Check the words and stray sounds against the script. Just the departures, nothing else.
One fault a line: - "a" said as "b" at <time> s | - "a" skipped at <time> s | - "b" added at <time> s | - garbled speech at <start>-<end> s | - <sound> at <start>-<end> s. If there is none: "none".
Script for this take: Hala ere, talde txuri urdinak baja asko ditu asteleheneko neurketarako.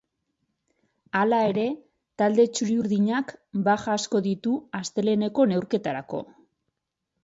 none